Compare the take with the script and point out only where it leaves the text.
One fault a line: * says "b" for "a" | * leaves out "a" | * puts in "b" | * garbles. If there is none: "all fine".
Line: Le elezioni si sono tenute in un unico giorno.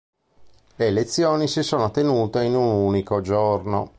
all fine